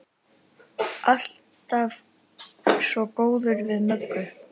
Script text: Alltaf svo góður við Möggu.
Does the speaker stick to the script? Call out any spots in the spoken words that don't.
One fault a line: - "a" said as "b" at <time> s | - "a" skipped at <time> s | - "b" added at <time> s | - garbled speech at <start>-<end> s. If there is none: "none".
none